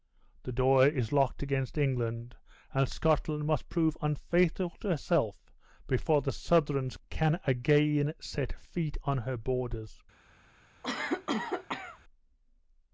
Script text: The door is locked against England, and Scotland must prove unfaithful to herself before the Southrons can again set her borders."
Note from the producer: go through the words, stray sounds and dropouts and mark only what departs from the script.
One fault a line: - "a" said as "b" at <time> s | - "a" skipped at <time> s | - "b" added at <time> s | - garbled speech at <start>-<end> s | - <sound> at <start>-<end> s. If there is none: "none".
- "feet on" added at 8.6 s
- cough at 10.8-12.0 s